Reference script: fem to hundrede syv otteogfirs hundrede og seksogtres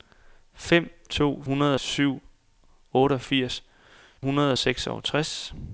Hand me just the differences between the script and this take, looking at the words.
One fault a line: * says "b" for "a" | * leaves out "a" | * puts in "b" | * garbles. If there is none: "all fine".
all fine